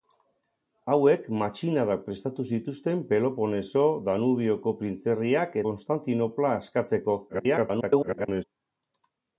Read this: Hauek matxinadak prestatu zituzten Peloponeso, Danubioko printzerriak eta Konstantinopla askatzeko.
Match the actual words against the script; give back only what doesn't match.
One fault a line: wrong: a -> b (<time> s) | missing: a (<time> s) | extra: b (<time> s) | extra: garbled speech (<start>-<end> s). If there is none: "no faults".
missing: eta (5.6 s)
extra: garbled speech (7.3-8.4 s)